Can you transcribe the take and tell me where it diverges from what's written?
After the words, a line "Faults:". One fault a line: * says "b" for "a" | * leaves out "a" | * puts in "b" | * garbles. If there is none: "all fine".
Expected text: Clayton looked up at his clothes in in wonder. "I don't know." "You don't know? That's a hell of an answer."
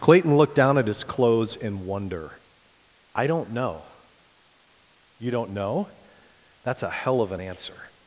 Clayton looked down at his clothes in wonder. "I don't know." "You don't know? That's a hell of an answer."
Faults:
* says "down" for "up"
* leaves out "in"